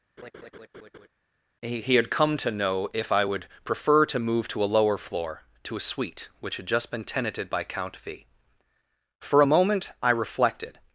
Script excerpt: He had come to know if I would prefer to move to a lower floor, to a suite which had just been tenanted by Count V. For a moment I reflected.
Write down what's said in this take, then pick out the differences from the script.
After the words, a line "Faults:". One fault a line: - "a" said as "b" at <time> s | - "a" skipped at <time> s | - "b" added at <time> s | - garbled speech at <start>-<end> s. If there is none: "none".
He he had come to know if I would prefer to move to a lower floor, to a suite which had just been tenanted by Count V. For a moment I reflected.
Faults:
- "he" added at 1.8 s